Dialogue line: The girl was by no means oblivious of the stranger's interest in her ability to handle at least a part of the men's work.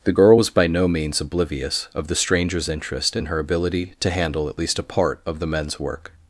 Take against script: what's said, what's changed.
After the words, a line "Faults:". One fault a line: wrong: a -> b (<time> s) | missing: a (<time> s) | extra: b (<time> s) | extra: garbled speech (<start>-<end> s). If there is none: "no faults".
The girl was by no means oblivious of the stranger's interest in her ability to handle at least a part of the men's work.
Faults:
no faults